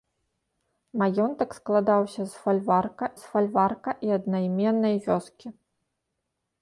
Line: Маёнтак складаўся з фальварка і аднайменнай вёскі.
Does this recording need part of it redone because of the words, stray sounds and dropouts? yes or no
yes